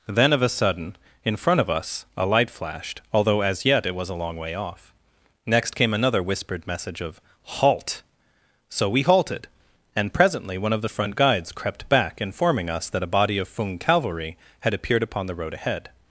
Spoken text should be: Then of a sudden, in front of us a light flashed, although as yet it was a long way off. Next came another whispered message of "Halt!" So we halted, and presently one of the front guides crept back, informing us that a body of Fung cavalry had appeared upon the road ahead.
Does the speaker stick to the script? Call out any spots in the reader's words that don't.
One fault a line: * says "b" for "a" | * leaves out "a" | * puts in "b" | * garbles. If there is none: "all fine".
all fine